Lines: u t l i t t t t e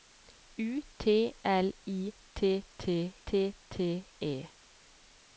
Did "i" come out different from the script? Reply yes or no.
no